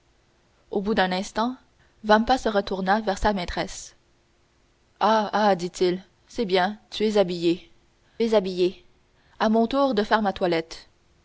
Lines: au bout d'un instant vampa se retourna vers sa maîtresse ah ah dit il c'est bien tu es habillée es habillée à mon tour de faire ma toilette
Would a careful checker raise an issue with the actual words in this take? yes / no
no